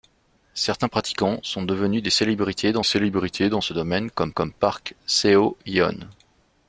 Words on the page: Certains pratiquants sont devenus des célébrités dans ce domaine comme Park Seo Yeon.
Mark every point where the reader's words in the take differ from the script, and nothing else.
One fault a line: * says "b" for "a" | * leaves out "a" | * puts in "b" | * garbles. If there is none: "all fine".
* puts in "célébrités dans"
* puts in "comme"